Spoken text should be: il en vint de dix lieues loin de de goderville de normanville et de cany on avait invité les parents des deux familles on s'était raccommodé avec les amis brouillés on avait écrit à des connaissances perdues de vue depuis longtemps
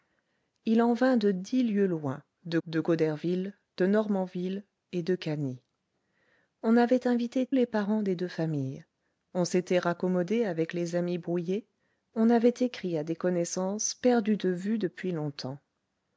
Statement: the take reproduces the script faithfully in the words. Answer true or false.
true